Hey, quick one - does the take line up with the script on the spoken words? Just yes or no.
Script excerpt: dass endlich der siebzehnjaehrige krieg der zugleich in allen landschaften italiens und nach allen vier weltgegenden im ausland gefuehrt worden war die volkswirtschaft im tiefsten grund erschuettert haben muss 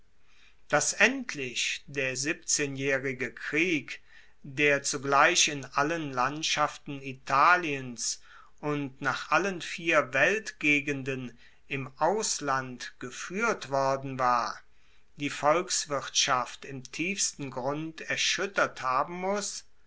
yes